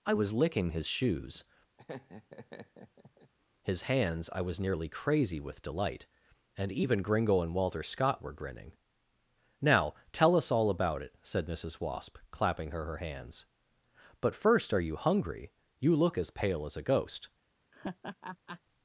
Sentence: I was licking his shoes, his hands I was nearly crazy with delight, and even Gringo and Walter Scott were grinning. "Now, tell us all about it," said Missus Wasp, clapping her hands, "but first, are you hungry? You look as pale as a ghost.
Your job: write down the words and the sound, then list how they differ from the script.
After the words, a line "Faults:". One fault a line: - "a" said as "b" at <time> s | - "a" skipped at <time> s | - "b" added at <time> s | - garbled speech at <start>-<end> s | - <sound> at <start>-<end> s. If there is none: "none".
I was licking his shoes, his hands I was nearly crazy with delight, and even Gringo and Walter Scott were grinning. "Now, tell us all about it," said Missus Wasp, clapping her her hands, "but first, are you hungry? You look as pale as a ghost.
Faults:
- laugh at 1.8-3.3 s
- "her" added at 12.9 s
- laugh at 17.7-18.6 s